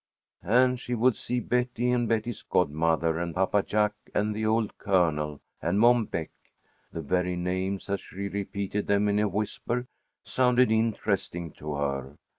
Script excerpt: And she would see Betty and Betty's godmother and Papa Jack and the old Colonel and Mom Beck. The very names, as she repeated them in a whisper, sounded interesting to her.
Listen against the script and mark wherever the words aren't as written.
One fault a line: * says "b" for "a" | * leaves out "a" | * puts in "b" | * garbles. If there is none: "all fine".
all fine